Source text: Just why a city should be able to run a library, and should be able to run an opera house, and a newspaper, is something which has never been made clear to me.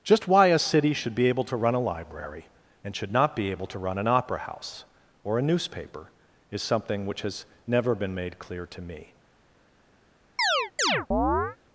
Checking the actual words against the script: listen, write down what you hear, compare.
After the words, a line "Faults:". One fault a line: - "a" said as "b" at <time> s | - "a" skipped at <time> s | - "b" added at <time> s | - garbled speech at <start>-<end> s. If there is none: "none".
Just why a city should be able to run a library, and should not be able to run an opera house, or a newspaper, is something which has never been made clear to me.
Faults:
- "not" added at 3.1 s
- "and" said as "or" at 5.2 s